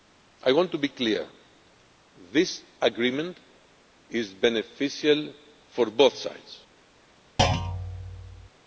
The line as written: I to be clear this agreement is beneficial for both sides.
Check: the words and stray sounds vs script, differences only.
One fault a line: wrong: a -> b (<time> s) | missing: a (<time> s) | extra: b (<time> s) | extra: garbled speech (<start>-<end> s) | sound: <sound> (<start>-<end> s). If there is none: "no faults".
extra: want (0.5 s)
sound: thud (7.4-8.5 s)